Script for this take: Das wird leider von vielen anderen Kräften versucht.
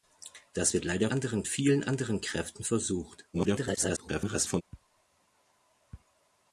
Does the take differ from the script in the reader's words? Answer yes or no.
yes